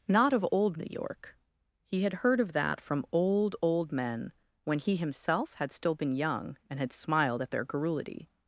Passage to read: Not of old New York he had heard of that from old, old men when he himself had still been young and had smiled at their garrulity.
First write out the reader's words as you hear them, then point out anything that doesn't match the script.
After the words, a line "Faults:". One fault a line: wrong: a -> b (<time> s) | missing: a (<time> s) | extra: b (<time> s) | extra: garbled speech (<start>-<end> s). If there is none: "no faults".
Not of old New York he had heard of that from old, old men when he himself had still been young and had smiled at their garrulity.
Faults:
no faults